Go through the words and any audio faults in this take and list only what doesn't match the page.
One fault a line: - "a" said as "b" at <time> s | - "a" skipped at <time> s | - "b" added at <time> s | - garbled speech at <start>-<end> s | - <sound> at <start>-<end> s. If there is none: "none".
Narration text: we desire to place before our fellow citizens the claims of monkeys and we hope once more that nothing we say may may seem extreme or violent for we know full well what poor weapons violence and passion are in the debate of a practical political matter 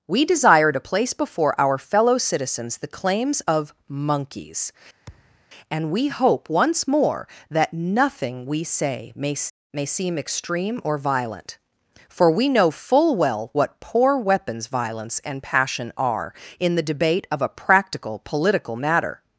- thud at 5.1-5.4 s